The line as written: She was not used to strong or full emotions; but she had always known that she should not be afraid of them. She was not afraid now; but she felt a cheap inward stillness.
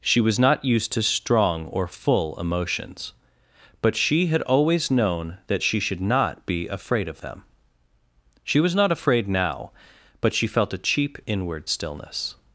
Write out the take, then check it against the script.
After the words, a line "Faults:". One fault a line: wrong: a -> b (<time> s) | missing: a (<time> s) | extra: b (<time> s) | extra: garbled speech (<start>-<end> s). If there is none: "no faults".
She was not used to strong or full emotions; but she had always known that she should not be afraid of them. She was not afraid now; but she felt a cheap inward stillness.
Faults:
no faults